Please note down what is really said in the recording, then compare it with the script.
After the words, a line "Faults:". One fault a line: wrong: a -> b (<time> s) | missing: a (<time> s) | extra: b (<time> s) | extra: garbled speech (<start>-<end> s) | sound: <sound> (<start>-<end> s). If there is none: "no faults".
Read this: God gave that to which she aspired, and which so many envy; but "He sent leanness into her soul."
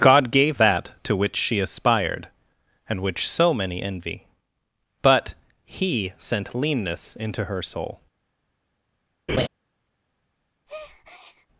God gave that to which she aspired, and which so many envy; but "He sent leanness into her soul."
Faults:
sound: laugh (9.3-9.5 s)
sound: breath (10.7-11.5 s)